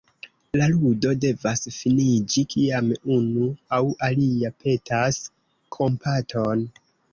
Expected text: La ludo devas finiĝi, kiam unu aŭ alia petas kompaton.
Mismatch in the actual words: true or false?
false